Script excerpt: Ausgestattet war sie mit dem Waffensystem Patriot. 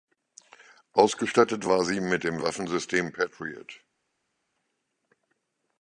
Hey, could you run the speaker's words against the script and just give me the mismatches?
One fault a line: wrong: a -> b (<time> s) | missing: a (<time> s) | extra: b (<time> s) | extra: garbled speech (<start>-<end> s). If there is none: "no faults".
no faults